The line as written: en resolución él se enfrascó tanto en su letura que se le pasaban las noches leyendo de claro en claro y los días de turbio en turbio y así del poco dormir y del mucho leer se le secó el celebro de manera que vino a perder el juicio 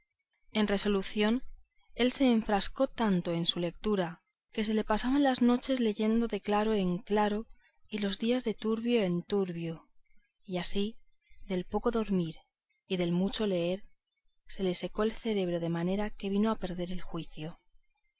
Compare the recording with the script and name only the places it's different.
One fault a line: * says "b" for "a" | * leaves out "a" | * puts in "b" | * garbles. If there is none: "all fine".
all fine